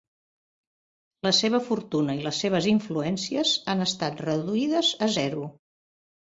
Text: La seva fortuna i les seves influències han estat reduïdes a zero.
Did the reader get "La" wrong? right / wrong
right